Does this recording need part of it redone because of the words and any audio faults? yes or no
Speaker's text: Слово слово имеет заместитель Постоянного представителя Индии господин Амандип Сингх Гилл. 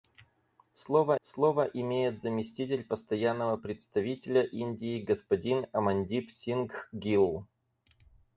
no